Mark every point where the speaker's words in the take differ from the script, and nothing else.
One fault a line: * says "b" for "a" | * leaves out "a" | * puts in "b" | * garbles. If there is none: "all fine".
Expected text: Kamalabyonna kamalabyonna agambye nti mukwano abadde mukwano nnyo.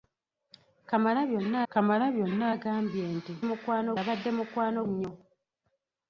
all fine